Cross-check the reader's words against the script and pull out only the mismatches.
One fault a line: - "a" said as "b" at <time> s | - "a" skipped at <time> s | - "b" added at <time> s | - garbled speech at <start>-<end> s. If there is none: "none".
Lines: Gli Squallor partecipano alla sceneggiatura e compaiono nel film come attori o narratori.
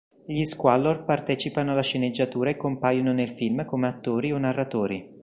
none